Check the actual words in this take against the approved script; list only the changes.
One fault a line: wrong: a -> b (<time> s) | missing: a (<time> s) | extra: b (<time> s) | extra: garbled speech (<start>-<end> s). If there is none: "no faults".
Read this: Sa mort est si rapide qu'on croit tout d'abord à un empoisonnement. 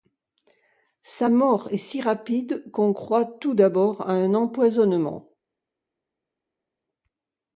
no faults